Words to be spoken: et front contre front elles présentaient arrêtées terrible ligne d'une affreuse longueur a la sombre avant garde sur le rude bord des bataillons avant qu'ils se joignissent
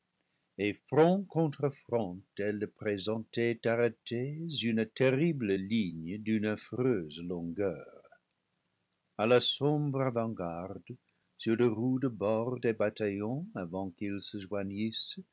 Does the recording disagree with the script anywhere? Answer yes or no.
yes